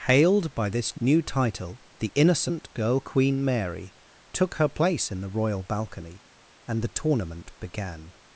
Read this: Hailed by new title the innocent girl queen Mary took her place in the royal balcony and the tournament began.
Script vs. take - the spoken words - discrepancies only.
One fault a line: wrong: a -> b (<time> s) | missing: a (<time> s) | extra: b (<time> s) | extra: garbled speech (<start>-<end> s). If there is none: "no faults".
extra: this (0.7 s)